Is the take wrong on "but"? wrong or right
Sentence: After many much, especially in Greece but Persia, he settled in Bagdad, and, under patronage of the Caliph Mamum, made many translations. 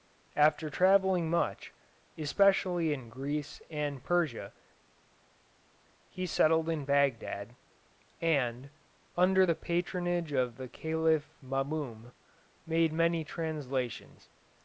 wrong